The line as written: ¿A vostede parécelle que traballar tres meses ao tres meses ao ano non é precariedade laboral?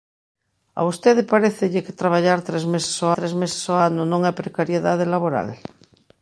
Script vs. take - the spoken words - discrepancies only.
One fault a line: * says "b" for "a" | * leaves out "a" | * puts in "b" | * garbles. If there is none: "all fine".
all fine